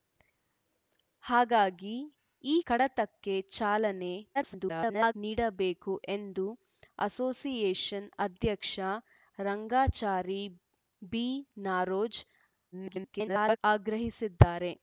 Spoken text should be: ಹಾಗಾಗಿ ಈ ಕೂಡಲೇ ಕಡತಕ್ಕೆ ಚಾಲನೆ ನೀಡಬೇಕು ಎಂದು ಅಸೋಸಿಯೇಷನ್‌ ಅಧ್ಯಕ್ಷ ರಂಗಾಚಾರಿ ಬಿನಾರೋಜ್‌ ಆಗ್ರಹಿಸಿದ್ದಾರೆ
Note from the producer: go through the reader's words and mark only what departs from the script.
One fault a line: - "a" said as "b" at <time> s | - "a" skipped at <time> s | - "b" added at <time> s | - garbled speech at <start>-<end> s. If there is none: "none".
- "ಕೂಡಲೇ" skipped at 2.5 s
- garbled speech at 4.3-5.1 s
- garbled speech at 12.7-13.6 s